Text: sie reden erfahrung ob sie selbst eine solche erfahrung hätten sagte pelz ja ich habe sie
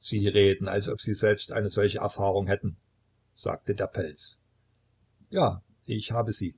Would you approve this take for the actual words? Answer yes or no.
no